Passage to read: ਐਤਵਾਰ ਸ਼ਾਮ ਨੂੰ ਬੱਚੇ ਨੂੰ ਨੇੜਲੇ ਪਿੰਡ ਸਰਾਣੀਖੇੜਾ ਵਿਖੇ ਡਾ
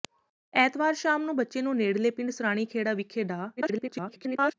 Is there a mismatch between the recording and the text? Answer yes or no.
yes